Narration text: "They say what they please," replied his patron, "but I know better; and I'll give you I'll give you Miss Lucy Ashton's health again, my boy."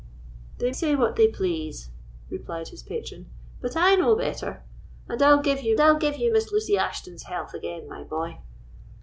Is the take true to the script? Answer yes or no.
yes